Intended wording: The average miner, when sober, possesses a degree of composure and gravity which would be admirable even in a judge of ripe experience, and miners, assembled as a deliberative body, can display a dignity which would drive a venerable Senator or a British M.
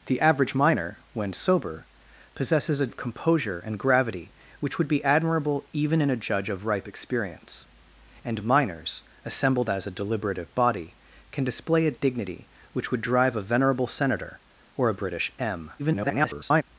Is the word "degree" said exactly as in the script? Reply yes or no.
no